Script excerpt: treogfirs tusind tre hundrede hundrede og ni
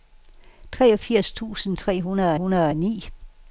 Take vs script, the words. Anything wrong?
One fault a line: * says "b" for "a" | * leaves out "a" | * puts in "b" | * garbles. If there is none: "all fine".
all fine